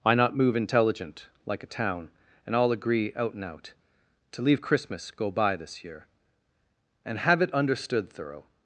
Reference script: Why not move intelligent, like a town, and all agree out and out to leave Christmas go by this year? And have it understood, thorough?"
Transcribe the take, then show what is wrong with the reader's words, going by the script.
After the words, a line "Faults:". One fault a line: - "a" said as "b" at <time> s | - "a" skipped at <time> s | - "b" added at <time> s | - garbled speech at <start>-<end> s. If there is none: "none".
Why not move intelligent, like a town, and all agree out and out to leave Christmas go by this year? And have it understood, thorough?"
Faults:
none